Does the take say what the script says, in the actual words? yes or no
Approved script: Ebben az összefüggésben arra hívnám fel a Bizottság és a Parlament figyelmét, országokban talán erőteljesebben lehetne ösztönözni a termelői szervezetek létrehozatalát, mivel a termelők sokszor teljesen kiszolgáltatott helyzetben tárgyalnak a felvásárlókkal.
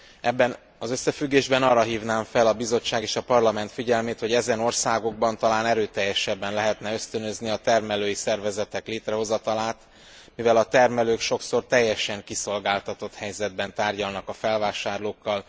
no